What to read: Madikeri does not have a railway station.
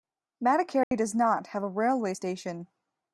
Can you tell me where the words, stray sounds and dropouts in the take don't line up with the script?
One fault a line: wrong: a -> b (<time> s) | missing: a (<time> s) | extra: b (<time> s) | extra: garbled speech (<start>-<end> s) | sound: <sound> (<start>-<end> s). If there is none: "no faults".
sound: dropout (0.8-0.9 s)